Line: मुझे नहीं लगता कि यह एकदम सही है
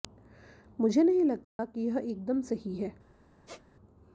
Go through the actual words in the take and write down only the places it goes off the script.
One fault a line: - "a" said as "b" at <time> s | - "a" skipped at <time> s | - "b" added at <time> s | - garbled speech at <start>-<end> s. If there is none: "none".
none